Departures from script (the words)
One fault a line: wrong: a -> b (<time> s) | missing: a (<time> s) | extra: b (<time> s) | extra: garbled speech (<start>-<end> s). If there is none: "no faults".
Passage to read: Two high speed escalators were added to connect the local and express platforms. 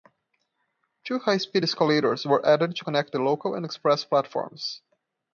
no faults